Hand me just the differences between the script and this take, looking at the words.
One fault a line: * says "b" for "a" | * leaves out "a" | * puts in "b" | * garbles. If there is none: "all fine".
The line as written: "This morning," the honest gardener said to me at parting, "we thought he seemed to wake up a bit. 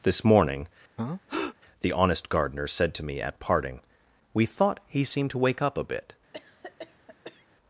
all fine